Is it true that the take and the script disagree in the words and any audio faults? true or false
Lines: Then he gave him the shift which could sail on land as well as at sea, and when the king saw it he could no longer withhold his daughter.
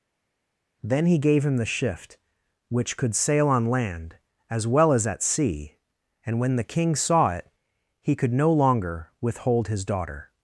false